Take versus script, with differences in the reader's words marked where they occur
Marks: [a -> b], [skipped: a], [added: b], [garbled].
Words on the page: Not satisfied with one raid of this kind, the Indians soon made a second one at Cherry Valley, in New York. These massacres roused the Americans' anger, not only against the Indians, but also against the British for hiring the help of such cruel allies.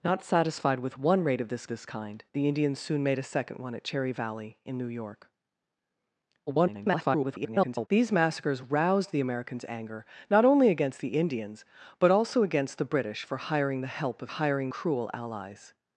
Not satisfied with one raid of this [added: this] kind, the Indians soon made a second one at Cherry Valley, in New York. [garbled] These massacres roused the Americans' anger, not only against the Indians, but also against the British for hiring the help of [such -> hiring] cruel allies.